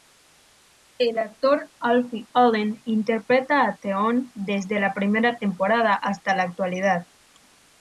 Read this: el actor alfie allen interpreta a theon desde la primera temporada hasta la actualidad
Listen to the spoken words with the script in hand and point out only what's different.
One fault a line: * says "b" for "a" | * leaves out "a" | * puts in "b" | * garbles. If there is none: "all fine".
all fine